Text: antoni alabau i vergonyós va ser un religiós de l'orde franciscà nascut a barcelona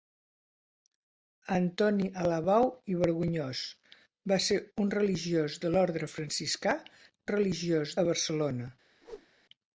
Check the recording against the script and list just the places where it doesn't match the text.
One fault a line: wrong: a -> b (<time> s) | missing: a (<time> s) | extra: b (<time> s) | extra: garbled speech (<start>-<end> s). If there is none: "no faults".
wrong: nascut -> religiós (7.3 s)